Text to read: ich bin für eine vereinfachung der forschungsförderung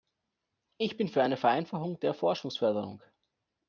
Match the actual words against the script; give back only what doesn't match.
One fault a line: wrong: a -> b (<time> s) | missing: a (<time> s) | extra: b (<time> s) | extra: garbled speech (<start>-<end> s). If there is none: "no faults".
no faults